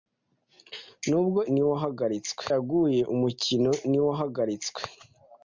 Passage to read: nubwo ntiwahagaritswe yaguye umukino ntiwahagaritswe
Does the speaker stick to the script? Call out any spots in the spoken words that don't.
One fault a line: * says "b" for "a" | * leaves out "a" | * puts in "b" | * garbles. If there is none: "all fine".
all fine